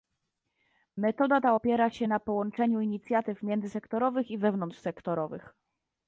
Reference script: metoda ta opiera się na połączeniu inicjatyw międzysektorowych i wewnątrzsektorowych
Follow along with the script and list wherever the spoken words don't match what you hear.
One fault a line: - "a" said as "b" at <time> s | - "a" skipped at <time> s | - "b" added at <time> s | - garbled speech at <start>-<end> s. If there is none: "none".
none